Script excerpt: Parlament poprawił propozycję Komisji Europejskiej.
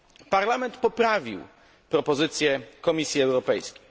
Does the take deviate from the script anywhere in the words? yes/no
no